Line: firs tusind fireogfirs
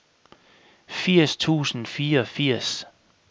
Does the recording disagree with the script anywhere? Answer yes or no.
no